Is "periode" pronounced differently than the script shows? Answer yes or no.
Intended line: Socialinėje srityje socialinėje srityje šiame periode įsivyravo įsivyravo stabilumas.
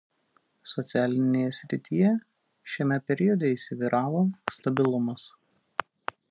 no